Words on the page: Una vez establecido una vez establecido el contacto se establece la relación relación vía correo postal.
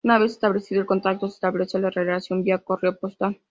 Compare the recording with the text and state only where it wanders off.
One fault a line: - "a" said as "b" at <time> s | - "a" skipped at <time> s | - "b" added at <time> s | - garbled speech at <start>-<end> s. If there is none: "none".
- "una vez establecido" skipped at 0.8 s
- "relación" skipped at 2.4 s